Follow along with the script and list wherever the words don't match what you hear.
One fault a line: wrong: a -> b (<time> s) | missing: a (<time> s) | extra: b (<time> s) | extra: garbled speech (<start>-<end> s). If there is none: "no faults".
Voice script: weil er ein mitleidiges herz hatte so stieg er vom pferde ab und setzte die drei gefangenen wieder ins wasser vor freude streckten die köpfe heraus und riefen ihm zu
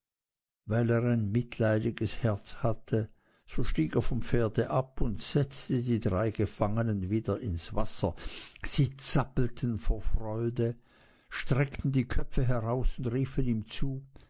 extra: sie zappelten (8.7 s)